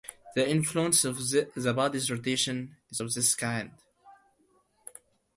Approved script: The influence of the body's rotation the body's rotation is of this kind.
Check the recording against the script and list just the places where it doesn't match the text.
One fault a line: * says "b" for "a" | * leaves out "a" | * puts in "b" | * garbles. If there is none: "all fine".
* leaves out "the body's rotation"